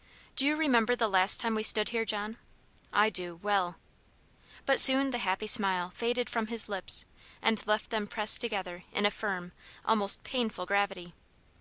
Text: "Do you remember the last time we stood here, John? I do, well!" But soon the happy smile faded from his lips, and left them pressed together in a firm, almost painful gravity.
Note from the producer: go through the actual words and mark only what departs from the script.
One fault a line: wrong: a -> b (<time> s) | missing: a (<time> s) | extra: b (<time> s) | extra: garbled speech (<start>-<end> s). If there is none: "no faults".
no faults